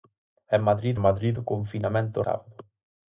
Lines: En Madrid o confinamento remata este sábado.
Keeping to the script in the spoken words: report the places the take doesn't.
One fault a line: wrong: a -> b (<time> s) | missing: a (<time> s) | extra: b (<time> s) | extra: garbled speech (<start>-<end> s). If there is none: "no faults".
extra: Madrid (1.0 s)
missing: remata este (2.2 s)